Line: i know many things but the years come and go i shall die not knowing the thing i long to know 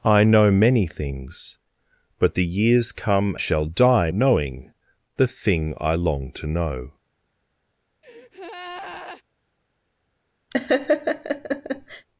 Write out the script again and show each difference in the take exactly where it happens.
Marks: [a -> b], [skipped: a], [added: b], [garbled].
i know many things but the years come [skipped: and go i] shall die [skipped: not] knowing the thing i long to know